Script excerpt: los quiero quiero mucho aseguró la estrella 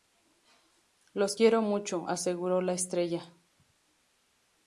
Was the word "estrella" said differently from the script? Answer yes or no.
no